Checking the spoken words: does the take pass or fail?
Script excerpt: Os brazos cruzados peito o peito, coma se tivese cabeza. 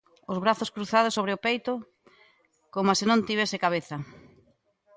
fail